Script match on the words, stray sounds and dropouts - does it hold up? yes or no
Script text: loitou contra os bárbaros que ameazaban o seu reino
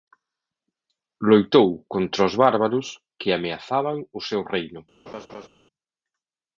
no